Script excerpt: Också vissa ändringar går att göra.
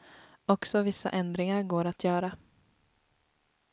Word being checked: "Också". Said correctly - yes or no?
yes